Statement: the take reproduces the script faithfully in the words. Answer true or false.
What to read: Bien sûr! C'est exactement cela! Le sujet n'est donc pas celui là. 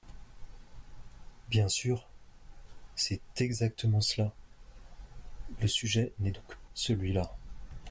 false